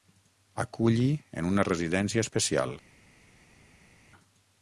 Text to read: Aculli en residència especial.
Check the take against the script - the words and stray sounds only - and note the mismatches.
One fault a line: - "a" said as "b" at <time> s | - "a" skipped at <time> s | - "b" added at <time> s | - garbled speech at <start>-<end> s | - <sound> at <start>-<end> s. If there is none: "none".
- "una" added at 1.5 s